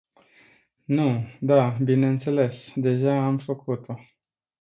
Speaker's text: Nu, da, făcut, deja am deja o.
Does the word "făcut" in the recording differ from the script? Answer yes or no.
yes